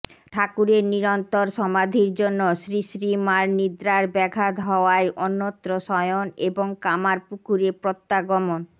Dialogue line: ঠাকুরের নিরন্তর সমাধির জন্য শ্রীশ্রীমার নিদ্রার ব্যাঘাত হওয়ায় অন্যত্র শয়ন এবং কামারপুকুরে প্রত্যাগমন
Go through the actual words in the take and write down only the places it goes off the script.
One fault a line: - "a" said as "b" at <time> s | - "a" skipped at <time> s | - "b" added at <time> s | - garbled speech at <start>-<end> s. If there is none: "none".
none